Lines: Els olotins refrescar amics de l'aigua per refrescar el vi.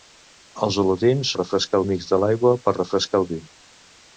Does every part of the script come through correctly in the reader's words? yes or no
yes